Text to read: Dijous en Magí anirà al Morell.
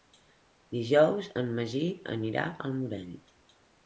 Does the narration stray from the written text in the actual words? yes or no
no